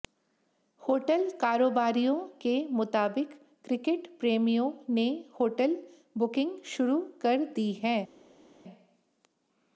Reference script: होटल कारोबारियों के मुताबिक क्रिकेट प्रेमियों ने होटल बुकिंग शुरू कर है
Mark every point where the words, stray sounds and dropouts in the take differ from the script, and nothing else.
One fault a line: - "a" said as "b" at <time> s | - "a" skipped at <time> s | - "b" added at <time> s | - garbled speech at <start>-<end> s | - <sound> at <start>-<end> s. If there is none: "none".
- "दी" added at 7.5 s